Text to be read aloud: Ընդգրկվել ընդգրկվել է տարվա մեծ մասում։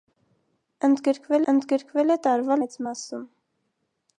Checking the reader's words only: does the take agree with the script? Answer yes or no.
yes